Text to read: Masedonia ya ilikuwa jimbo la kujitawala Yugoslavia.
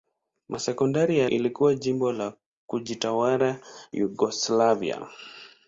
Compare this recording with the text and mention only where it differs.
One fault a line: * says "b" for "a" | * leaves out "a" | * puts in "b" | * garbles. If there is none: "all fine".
all fine